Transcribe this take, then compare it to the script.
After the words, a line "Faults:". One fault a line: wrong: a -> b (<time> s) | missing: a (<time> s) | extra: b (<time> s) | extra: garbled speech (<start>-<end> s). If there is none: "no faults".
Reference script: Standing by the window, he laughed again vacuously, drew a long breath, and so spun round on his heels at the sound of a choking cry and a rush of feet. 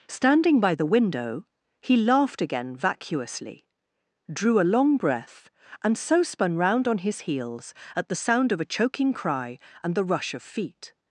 Standing by the window, he laughed again vacuously, drew a long breath, and so spun round on his heels at the sound of a choking cry and the rush of feet.
Faults:
wrong: a -> the (9.9 s)